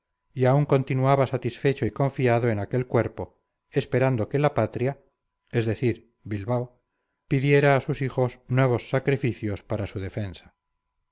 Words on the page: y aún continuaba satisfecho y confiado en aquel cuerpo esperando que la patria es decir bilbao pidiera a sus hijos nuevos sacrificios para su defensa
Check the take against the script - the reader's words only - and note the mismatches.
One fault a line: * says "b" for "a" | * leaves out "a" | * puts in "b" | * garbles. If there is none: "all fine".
all fine